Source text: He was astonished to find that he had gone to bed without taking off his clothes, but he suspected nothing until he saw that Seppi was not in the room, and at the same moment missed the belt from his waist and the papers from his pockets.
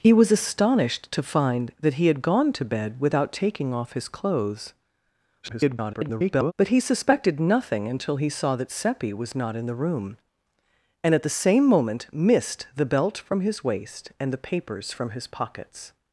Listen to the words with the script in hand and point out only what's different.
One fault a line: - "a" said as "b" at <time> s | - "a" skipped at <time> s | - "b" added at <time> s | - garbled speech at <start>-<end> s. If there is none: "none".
- garbled speech at 5.4-6.5 s